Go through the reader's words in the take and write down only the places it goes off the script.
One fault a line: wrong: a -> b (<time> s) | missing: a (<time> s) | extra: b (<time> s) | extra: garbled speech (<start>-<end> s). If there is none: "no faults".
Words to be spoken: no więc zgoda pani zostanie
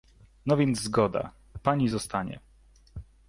no faults